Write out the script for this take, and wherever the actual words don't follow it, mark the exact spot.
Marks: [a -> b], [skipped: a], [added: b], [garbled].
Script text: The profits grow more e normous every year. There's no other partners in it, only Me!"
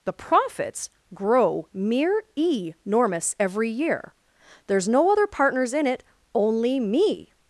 The profits grow [more -> mere] e normous every year. There's no other partners in it, only Me!"